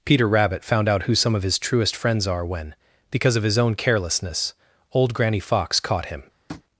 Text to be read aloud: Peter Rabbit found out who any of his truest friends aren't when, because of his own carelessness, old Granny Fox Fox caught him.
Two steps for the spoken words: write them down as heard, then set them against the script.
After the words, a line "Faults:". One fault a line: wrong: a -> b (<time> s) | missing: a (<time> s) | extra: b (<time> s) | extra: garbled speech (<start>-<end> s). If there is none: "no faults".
Peter Rabbit found out who some of his truest friends are when, because of his own carelessness, old Granny Fox caught him.
Faults:
wrong: any -> some (1.1 s)
wrong: aren't -> are (2.3 s)
missing: Fox (5.8 s)